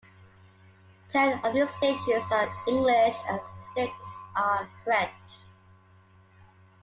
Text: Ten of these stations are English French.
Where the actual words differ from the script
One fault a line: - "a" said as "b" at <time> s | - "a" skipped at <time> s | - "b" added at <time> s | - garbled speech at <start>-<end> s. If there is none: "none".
- "and six are" added at 3.3 s